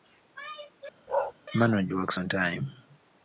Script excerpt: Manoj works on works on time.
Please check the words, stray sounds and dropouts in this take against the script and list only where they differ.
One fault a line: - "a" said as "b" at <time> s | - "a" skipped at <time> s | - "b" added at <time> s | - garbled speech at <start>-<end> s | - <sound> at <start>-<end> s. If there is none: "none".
- bark at 1.1-1.3 s
- "works on" skipped at 2.3 s